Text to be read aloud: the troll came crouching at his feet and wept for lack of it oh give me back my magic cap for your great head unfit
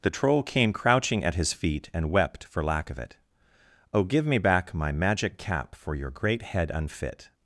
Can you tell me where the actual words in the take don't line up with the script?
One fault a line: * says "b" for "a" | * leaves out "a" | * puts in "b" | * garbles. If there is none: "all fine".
all fine